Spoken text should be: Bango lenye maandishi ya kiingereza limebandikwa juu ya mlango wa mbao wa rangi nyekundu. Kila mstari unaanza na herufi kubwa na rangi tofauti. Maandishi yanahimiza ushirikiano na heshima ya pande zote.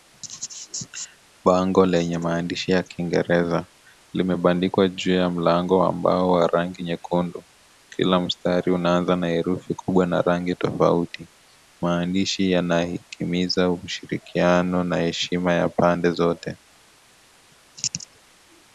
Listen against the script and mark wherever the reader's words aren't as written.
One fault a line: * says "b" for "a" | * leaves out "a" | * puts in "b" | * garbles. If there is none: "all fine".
all fine